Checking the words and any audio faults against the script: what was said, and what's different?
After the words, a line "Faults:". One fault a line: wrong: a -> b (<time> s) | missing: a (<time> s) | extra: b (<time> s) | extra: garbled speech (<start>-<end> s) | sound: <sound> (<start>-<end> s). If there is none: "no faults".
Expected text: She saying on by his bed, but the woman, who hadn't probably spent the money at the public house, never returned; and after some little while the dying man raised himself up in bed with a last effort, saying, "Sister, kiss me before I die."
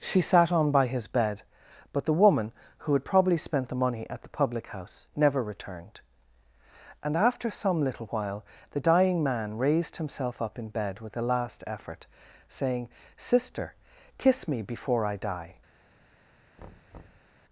She sat on by his bed, but the woman, who had probably spent the money at the public house, never returned; and after some little while the dying man raised himself up in bed with a last effort, saying, "Sister, kiss me before I die."
Faults:
wrong: saying -> sat (0.2 s)
wrong: hadn't -> had (2.9 s)
sound: thud (16.6-17.3 s)